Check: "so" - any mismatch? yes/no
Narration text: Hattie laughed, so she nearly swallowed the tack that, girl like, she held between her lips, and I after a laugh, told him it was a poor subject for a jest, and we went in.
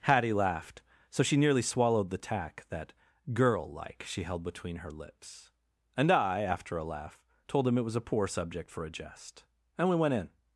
no